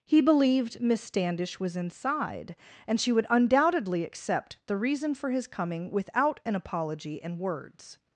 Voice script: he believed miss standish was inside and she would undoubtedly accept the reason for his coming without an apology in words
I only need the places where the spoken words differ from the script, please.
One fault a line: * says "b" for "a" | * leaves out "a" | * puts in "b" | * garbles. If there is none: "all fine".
all fine